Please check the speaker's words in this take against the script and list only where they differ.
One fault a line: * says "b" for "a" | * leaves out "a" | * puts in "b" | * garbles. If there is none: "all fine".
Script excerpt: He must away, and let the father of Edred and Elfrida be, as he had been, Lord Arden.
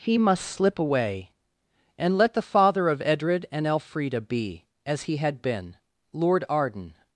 * puts in "slip"